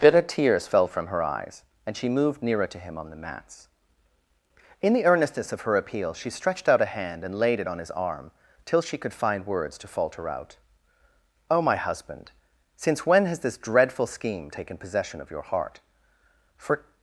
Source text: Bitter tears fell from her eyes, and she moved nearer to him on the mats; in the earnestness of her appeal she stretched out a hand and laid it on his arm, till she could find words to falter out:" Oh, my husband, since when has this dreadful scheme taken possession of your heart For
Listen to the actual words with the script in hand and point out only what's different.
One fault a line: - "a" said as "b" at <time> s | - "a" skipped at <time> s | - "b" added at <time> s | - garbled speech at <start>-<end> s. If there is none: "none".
none